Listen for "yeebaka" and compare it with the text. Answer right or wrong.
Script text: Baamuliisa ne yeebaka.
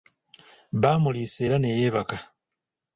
right